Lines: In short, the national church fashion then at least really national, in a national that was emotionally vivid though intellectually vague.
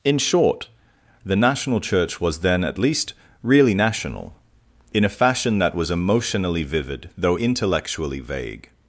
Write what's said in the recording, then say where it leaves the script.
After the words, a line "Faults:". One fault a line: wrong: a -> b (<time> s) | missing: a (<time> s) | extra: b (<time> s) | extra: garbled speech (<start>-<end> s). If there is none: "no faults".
In short, the national church was then at least really national, in a fashion that was emotionally vivid though intellectually vague.
Faults:
wrong: fashion -> was (2.2 s)
wrong: national -> fashion (5.1 s)